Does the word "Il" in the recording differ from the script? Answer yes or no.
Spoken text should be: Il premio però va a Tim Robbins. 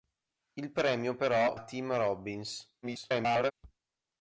no